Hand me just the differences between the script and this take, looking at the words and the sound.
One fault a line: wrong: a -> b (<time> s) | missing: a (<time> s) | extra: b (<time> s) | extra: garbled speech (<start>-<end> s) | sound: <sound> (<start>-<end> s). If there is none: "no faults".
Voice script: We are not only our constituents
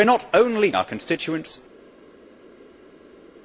no faults